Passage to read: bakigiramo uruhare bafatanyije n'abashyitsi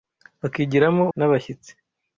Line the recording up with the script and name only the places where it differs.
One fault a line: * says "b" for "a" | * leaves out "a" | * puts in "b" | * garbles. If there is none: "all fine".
* leaves out "uruhare bafatanyije"